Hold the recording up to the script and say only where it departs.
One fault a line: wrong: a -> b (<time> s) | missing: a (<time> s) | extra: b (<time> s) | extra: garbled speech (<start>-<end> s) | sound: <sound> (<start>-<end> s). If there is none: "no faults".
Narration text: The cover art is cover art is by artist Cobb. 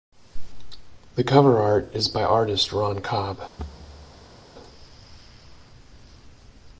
missing: cover art is (2.1 s)
extra: Ron (2.7 s)
sound: thud (3.6-4.4 s)